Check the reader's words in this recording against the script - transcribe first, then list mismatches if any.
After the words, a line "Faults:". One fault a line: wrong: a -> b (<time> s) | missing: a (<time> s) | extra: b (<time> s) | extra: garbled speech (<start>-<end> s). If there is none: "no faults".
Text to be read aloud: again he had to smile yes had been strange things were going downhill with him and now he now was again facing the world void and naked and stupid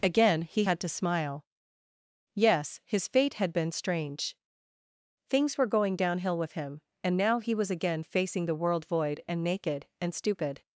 again he had to smile yes his fate had been strange things were going downhill with him and now he was again facing the world void and naked and stupid
Faults:
extra: his fate (2.8 s)
missing: now (7.5 s)